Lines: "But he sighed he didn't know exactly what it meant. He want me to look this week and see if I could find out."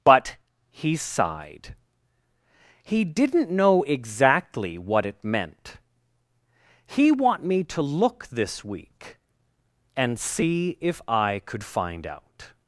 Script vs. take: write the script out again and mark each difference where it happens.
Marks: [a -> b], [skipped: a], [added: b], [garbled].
"But he sighed he didn't know exactly what it meant. He want me to look this week and see if I could find out."